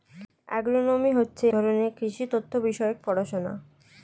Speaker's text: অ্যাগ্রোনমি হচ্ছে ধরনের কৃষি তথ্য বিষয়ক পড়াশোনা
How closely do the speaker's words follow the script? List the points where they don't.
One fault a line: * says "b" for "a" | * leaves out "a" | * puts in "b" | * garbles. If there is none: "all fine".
all fine